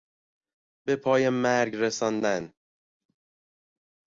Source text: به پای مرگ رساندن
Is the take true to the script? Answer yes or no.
yes